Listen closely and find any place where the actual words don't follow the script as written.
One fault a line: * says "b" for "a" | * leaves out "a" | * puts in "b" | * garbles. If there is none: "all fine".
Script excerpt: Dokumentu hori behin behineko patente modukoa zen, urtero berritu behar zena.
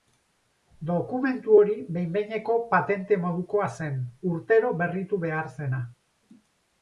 all fine